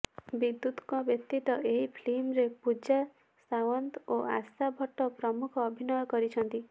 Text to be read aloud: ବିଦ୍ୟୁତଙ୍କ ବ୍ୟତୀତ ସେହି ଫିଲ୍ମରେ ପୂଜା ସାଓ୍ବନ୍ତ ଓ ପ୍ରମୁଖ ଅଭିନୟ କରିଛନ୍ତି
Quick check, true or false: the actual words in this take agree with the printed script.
false